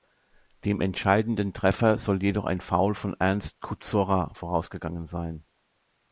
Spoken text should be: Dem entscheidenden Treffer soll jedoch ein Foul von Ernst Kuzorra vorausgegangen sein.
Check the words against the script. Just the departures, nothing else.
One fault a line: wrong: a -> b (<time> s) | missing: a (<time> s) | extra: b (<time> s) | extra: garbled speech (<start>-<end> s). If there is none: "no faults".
no faults